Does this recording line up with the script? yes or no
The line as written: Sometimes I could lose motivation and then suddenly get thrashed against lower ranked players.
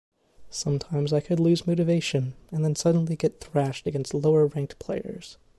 yes